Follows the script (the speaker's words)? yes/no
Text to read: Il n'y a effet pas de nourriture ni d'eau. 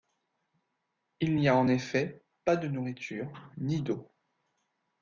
no